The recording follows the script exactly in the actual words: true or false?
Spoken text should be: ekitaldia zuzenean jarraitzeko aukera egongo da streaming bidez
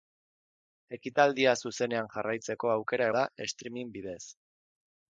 false